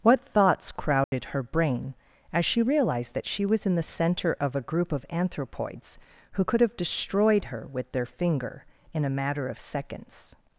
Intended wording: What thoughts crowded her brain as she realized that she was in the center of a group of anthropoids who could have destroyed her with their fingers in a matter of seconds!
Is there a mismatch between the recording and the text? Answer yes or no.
yes